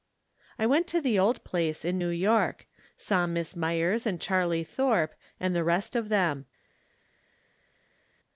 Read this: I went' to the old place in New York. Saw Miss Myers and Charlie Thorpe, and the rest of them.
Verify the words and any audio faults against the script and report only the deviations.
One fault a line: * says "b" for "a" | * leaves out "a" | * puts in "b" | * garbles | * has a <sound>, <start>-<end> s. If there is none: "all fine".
all fine